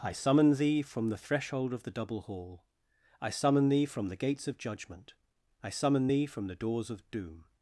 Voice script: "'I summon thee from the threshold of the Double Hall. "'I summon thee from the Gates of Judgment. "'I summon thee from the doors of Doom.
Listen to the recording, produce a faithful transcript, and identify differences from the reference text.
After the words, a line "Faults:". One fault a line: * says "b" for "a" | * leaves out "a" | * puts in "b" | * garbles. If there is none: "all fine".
"'I summon thee from the threshold of the Double Hall. "'I summon thee from the Gates of Judgment. "'I summon thee from the doors of Doom.
Faults:
all fine